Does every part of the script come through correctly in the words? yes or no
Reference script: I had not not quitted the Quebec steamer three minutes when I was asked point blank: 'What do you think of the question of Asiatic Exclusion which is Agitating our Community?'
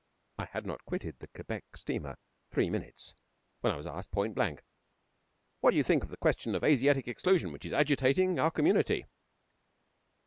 no